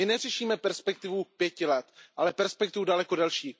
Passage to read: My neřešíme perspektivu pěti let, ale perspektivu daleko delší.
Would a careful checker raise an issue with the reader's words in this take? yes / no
no